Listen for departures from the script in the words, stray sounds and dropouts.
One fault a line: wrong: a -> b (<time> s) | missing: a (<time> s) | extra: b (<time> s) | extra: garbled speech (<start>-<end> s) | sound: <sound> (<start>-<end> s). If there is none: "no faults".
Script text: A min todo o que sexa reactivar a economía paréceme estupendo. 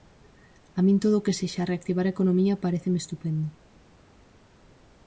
no faults